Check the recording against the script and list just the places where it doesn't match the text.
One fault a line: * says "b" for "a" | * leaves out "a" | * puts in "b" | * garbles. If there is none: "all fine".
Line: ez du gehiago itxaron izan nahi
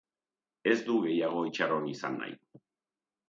all fine